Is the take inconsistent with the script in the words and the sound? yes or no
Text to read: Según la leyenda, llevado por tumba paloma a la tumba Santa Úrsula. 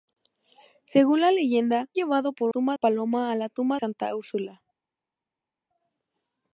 no